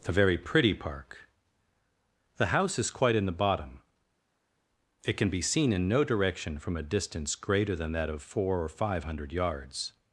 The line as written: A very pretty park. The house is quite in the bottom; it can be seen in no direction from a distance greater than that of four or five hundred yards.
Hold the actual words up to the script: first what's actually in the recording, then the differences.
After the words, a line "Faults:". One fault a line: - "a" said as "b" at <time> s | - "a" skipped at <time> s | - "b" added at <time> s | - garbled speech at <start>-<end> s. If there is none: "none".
A very pretty park. The house is quite in the bottom; it can be seen in no direction from a distance greater than that of four or five hundred yards.
Faults:
none